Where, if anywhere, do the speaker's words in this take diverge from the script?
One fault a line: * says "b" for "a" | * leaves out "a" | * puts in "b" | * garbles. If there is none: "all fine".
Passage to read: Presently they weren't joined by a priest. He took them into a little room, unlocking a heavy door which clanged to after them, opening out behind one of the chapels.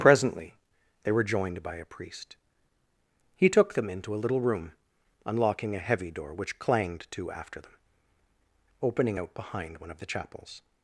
* says "were" for "weren't"